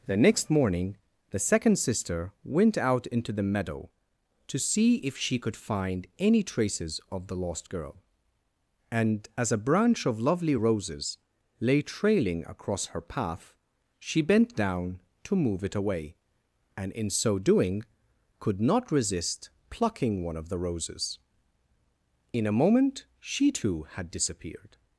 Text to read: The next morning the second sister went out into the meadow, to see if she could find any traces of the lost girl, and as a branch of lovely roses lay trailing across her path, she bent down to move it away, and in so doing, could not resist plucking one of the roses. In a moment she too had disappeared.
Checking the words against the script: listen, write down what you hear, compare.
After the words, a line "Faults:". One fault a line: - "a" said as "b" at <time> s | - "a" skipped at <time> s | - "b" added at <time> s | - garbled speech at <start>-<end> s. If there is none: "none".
The next morning the second sister went out into the meadow, to see if she could find any traces of the lost girl, and as a branch of lovely roses lay trailing across her path, she bent down to move it away, and in so doing, could not resist plucking one of the roses. In a moment she too had disappeared.
Faults:
none